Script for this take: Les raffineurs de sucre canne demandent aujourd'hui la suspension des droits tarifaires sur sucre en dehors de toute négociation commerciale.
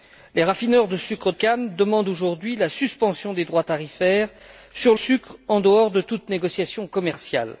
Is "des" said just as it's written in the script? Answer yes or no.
yes